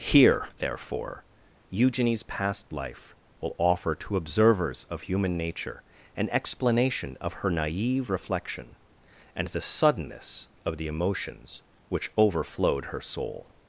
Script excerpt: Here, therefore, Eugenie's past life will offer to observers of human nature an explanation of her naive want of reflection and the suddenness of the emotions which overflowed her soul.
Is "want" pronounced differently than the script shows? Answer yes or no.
yes